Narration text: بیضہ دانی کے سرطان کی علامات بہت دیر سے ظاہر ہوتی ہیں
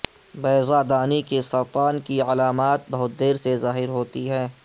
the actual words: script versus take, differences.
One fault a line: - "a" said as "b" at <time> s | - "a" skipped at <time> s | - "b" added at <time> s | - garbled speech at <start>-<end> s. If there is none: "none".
none